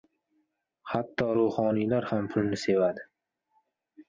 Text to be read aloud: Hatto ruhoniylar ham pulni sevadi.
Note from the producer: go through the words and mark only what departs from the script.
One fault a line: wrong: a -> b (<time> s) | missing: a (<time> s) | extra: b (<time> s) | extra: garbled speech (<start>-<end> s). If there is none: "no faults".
no faults